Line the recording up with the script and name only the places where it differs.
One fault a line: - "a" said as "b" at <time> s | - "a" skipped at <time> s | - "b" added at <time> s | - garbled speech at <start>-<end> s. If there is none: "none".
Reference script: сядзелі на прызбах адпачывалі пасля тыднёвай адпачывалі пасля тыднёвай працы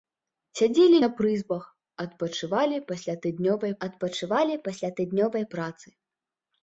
none